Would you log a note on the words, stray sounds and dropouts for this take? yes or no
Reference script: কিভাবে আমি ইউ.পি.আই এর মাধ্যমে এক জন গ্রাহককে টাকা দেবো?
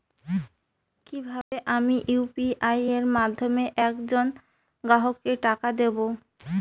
yes